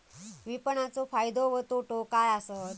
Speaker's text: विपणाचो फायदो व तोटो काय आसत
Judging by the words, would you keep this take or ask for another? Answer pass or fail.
pass